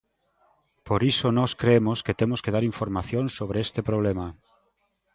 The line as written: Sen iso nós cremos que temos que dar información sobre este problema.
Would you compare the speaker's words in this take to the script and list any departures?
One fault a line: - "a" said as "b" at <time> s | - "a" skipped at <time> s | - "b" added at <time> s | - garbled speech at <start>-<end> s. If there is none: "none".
- "Sen" said as "Por" at 0.9 s